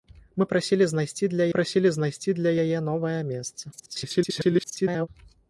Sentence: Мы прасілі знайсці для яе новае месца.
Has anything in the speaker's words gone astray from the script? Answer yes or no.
yes